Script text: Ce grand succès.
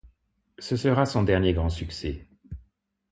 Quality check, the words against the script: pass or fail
fail